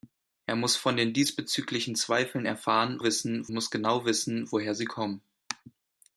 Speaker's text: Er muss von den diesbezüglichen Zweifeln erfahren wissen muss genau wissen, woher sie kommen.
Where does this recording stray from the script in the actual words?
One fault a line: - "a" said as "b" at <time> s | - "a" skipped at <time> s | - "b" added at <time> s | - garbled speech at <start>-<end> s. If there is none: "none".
none